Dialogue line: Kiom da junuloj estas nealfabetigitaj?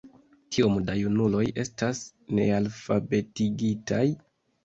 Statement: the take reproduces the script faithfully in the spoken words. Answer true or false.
true